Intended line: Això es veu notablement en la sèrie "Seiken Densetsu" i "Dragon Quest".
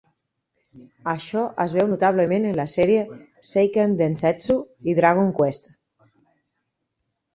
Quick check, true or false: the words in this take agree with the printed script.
true